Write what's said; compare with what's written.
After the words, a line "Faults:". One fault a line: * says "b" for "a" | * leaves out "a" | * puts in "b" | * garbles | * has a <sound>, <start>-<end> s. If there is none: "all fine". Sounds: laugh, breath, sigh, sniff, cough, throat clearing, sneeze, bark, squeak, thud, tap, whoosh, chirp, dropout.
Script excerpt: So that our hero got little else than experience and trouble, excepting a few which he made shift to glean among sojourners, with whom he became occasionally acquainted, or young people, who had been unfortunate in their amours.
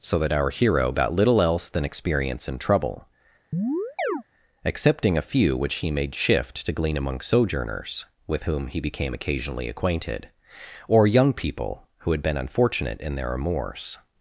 So that our hero got little else than experience and trouble, excepting a few which he made shift to glean among sojourners, with whom he became occasionally acquainted, or young people, who had been unfortunate in their amours.
Faults:
* has a chirp, 3.5-4.2 s